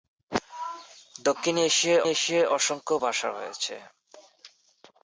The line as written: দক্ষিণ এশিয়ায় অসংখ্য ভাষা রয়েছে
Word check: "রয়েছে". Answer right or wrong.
right